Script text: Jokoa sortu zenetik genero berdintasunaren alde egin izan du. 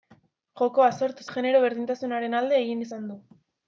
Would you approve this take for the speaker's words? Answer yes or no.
no